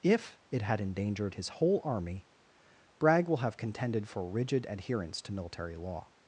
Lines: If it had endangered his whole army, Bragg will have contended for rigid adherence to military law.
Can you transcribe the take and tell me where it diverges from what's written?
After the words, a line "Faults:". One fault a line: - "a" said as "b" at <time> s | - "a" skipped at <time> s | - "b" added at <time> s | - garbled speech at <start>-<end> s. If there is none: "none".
If it had endangered his whole army, Bragg will have contended for rigid adherence to military law.
Faults:
none